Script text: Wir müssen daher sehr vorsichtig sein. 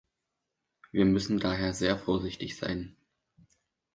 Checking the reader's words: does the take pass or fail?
pass